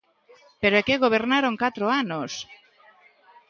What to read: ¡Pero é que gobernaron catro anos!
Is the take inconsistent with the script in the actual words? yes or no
no